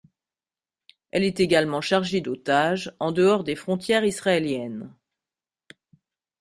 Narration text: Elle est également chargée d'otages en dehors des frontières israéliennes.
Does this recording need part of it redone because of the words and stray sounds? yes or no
no